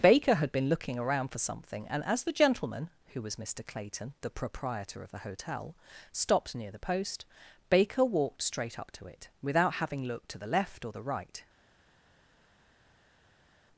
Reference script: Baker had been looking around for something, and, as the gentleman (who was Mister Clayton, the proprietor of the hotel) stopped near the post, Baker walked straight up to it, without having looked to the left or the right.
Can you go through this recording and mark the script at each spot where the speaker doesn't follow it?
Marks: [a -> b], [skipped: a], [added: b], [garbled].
Baker had been looking around for something, and, as the gentleman (who was Mister Clayton, the proprietor of the hotel) stopped near the post, Baker walked straight up to it, without having looked to the left or the right.